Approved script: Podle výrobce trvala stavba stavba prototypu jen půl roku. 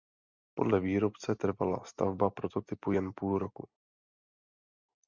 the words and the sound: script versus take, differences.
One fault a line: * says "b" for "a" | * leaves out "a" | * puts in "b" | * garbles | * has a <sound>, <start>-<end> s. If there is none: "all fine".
* leaves out "stavba"